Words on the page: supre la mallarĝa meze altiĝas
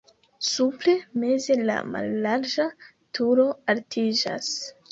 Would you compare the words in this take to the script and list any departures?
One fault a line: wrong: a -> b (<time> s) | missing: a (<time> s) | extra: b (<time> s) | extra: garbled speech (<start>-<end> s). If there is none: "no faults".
extra: meze (1.2 s)
wrong: meze -> turo (3.2 s)